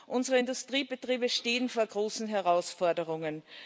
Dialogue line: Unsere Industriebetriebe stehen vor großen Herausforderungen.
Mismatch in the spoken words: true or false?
false